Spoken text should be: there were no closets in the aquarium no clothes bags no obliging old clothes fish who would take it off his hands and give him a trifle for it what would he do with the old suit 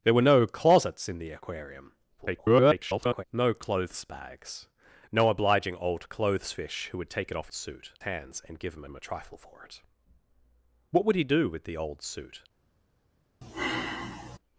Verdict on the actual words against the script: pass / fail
fail